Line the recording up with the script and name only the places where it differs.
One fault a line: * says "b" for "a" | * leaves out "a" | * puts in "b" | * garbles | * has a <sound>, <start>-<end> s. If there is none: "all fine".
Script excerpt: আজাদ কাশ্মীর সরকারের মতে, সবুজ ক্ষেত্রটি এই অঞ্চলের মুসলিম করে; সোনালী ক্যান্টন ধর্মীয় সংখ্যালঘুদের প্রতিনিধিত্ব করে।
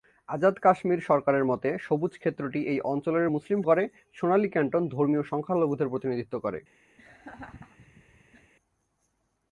* has a laugh, 7.0-8.5 s